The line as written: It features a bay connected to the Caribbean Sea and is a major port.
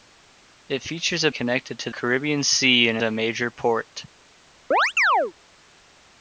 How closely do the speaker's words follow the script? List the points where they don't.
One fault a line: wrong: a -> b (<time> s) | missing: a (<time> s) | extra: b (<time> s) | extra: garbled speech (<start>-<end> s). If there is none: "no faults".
missing: bay (1.3 s)
missing: the (1.9 s)
missing: is (3.0 s)